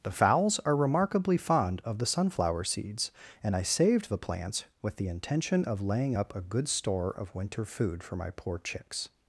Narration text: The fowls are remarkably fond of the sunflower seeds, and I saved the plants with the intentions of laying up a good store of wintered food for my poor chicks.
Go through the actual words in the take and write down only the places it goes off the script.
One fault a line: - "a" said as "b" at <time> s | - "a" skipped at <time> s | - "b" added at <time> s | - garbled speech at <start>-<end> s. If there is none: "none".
- "intentions" said as "intention" at 5.1 s
- "wintered" said as "winter" at 7.4 s